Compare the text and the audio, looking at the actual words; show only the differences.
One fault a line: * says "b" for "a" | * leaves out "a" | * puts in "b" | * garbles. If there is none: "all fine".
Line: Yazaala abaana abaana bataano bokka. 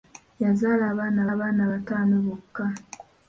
all fine